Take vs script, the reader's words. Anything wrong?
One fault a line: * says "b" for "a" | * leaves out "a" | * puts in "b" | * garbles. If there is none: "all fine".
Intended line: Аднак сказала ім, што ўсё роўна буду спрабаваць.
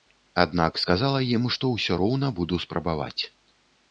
all fine